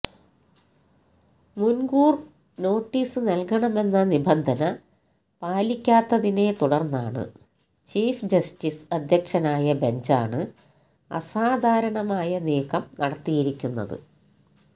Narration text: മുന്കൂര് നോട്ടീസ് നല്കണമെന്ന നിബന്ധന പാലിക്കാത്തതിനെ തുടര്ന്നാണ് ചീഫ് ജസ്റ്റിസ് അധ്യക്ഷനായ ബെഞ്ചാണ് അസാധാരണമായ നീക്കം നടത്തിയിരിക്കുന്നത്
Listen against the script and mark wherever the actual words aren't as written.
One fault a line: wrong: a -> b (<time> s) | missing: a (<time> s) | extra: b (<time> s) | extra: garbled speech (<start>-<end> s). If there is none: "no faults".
no faults